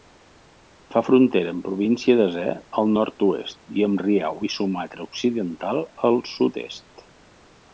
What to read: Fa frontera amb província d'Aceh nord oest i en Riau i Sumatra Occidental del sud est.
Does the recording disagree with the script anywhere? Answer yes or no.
yes